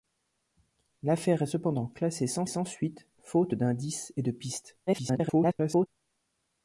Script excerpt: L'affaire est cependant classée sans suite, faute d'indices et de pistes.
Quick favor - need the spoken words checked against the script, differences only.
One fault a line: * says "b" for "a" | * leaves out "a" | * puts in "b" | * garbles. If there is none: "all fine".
* puts in "sans"
* garbles